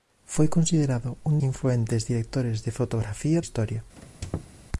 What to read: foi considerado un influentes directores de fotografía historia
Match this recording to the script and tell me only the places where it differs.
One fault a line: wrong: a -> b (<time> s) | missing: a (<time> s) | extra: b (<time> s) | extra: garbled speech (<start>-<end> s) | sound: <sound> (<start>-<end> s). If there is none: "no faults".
sound: squeak (4.0-4.6 s)